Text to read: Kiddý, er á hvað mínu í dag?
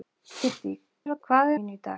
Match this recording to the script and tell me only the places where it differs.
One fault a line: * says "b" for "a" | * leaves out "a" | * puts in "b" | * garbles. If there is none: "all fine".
all fine